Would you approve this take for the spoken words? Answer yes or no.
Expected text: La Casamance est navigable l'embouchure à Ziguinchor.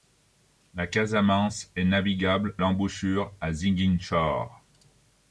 yes